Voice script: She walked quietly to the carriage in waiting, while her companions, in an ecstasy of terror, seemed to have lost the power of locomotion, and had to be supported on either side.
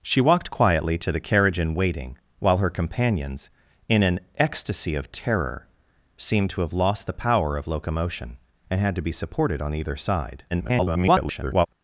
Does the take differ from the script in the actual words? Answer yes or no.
yes